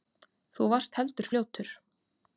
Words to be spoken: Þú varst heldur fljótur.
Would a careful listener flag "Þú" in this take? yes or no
no